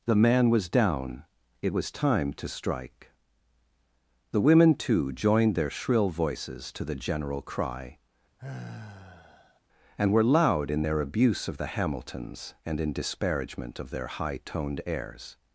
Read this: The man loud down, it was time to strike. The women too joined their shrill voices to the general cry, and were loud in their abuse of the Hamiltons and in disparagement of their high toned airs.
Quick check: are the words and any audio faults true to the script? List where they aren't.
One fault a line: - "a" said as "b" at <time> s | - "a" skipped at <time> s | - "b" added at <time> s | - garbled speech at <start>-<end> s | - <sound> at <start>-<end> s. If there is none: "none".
- "loud" said as "was" at 0.5 s
- sigh at 8.4-9.6 s